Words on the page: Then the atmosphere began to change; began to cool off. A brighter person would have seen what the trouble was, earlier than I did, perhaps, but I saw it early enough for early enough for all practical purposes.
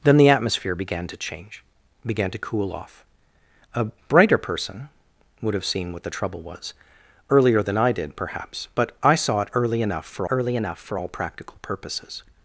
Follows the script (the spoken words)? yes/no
yes